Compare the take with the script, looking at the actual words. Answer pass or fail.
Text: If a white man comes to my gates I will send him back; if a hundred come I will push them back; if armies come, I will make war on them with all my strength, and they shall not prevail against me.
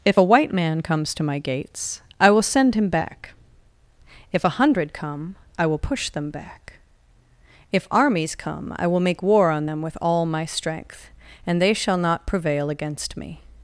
pass